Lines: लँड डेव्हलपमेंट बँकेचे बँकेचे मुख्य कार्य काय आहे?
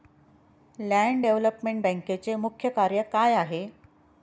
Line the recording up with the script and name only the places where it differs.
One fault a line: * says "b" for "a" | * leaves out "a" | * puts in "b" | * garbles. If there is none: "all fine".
* leaves out "बँकेचे"